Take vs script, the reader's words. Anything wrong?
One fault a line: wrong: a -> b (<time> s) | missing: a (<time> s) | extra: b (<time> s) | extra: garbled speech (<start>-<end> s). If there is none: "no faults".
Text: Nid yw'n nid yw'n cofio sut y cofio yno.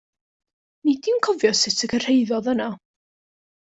missing: nid yw'n (1.2 s)
wrong: cofio -> cyrhaeddodd (1.9 s)